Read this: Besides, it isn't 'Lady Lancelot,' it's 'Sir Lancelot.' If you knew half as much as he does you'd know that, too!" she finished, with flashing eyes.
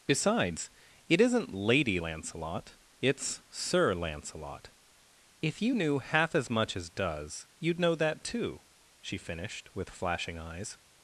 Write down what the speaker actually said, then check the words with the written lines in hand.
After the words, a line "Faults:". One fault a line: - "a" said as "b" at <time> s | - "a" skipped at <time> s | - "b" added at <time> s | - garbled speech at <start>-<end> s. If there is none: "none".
Besides, it isn't 'Lady Lancelot,' it's 'Sir Lancelot.' If you knew half as much as does you'd know that, too!" she finished, with flashing eyes.
Faults:
- "he" skipped at 6.9 s